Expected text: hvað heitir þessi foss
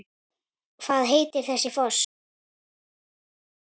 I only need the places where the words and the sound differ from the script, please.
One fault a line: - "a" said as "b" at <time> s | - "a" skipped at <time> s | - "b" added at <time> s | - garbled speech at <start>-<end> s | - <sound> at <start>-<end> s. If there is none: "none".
none